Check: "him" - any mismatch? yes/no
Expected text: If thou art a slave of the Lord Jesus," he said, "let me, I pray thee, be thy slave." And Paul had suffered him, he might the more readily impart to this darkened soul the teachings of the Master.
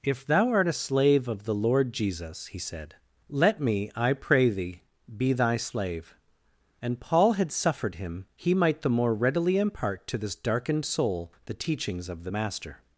no